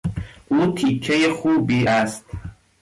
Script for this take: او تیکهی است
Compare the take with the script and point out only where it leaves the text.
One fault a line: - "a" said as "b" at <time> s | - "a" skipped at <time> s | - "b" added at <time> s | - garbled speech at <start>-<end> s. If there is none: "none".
- "خوبی" added at 1.3 s